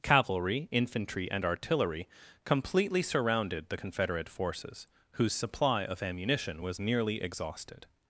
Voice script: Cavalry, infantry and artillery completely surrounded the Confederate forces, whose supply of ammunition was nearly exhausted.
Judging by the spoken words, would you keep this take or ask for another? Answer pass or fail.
pass